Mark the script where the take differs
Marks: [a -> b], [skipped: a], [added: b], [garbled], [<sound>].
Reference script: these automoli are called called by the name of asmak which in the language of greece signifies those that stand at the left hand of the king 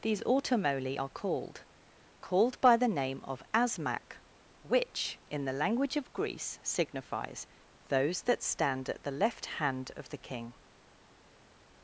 these automoli are called called by the name of asmak which in the language of greece signifies those that stand at the left hand of the king